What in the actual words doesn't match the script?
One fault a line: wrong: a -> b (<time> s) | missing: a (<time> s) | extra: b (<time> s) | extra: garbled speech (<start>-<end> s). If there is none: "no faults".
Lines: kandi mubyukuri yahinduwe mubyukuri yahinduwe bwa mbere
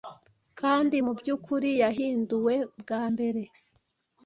missing: mubyukuri yahinduwe (2.5 s)